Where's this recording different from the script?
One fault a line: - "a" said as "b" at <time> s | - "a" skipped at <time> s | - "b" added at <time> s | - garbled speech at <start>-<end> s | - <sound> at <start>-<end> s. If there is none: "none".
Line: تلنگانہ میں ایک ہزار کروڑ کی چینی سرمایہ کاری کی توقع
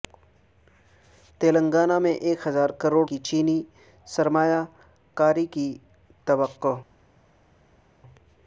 none